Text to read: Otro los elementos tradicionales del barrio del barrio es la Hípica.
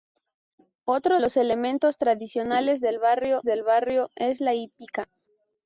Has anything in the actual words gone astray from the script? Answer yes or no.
no